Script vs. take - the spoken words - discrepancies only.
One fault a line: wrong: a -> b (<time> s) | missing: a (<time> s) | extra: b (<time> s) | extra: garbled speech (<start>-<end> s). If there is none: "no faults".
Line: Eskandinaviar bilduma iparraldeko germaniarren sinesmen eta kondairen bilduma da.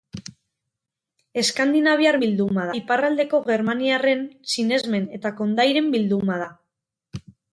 no faults